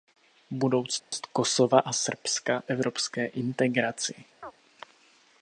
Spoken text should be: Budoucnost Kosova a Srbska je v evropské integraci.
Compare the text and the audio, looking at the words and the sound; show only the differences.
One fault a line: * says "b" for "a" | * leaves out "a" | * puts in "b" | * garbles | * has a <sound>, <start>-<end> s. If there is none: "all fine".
* has a dropout, 1.0-1.1 s
* leaves out "je v"
* has a chirp, 4.4-4.5 s